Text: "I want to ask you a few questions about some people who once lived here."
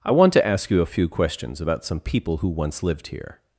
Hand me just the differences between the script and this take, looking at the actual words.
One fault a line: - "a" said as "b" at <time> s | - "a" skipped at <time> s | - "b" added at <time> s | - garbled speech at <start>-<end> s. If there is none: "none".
none